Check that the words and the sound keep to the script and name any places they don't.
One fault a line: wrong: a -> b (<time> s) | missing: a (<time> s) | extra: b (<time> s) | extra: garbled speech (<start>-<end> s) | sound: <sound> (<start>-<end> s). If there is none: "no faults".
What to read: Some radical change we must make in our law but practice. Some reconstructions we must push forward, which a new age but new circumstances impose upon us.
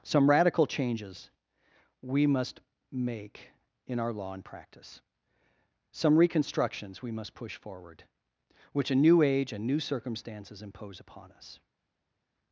wrong: change -> changes (0.6 s)
wrong: but -> and (4.3 s)
wrong: but -> and (9.5 s)